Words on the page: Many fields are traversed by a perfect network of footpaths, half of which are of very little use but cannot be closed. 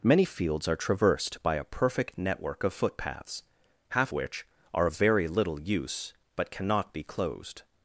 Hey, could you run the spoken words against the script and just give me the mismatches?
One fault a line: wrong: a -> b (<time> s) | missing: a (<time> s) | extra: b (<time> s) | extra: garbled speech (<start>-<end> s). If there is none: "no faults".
missing: of (4.1 s)